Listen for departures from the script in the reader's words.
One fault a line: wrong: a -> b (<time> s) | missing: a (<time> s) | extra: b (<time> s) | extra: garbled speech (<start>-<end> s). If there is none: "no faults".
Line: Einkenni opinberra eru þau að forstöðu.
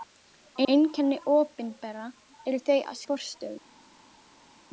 no faults